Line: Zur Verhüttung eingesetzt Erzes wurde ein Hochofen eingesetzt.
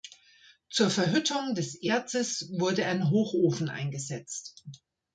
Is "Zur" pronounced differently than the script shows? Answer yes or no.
no